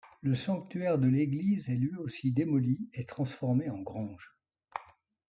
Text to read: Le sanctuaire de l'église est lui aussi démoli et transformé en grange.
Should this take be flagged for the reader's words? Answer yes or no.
no